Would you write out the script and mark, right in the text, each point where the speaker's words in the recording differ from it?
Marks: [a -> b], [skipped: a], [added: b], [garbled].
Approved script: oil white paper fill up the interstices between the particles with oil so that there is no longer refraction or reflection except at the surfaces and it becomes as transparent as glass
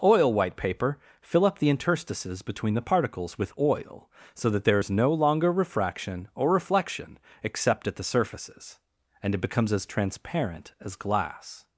oil white paper fill up the interstices between the particles with oil so that there is no longer refraction or reflection except at the surfaces and it becomes as transparent as glass